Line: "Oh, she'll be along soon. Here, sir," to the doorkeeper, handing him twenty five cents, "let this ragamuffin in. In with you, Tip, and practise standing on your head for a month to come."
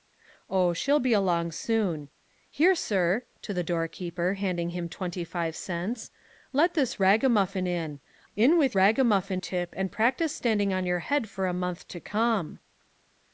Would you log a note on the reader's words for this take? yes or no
yes